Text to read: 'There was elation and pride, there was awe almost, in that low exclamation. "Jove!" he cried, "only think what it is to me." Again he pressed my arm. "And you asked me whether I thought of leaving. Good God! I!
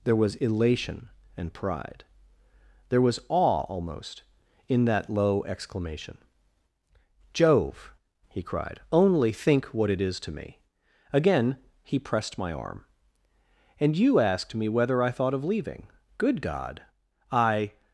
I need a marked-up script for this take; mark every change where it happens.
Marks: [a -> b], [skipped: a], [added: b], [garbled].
'There was elation and pride, there was awe almost, in that low exclamation. "Jove!" he cried, "only think what it is to me." Again he pressed my arm. "And you asked me whether I thought of leaving. Good God! I!